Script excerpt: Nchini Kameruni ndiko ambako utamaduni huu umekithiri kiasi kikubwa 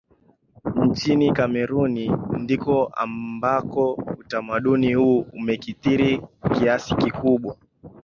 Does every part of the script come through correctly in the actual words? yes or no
yes